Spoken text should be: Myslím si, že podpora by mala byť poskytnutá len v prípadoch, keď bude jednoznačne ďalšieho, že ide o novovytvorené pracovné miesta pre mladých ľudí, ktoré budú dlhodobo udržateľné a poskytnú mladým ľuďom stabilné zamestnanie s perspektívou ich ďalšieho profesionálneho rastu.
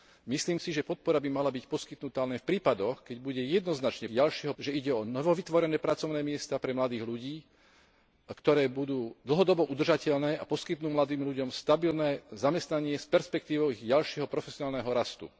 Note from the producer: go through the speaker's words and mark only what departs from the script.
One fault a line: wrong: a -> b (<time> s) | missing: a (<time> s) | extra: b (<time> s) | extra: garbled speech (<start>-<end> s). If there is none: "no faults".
no faults